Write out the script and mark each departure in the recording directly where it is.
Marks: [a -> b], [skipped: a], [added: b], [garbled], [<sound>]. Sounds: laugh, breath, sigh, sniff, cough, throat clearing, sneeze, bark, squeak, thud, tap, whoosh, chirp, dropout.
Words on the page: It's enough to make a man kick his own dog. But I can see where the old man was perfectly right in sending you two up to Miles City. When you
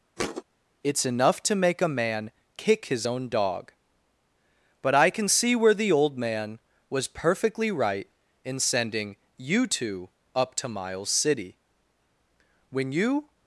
[thud] It's enough to make a man kick his own dog. But I can see where the old man was perfectly right in sending you two up to Miles City. When you